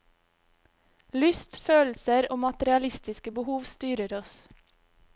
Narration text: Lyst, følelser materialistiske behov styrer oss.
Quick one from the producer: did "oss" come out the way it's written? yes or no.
yes